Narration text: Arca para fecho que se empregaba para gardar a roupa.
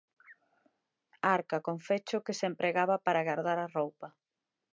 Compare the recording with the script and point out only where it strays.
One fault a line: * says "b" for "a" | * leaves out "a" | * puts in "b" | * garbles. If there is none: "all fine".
* says "con" for "para"